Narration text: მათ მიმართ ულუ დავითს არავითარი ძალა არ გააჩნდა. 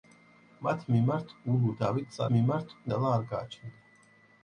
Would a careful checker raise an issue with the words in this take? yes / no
yes